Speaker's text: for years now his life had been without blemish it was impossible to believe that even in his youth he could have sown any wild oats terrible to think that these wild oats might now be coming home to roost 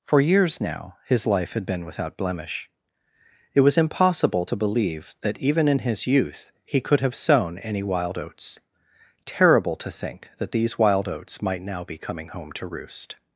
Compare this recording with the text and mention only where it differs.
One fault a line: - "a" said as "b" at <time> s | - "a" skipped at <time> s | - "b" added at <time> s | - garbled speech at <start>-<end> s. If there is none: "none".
none